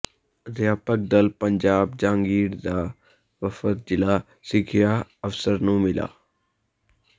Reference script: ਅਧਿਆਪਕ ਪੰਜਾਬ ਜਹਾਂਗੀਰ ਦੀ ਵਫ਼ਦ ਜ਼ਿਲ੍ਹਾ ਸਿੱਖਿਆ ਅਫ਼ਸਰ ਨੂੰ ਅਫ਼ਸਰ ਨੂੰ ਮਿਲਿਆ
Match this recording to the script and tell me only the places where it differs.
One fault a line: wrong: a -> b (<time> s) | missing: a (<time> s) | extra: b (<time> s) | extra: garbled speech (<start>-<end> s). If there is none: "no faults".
extra: ਦਲ (1.1 s)
wrong: ਦੀ -> ਦਾ (2.6 s)
missing: ਅਫ਼ਸਰ ਨੂੰ (5.8 s)